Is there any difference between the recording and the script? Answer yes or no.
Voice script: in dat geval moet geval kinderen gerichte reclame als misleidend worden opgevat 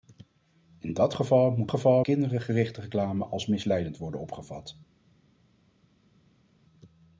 no